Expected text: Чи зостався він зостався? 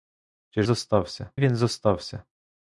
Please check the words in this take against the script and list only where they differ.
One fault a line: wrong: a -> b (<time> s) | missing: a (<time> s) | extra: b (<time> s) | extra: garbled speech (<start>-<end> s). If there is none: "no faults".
no faults